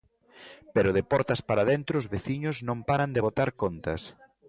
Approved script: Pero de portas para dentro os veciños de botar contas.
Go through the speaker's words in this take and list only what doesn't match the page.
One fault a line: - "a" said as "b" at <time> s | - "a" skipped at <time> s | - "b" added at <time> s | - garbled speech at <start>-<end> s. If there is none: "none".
- "non paran" added at 2.7 s